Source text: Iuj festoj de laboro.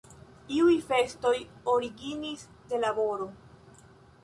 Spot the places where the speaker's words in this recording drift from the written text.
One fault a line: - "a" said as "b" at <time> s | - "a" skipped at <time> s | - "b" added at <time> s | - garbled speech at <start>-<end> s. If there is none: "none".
- "originis" added at 1.7 s